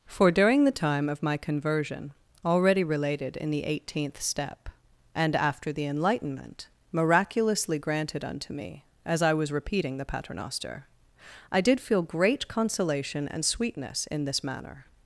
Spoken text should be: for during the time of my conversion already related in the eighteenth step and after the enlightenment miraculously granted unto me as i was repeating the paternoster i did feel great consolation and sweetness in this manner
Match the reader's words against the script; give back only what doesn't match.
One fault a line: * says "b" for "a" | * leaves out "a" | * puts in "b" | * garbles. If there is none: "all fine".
all fine